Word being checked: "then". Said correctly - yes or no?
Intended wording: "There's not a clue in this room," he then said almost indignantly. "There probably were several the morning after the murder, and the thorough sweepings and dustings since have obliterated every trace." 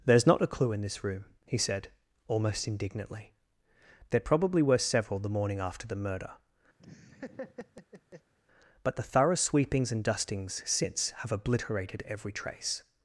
no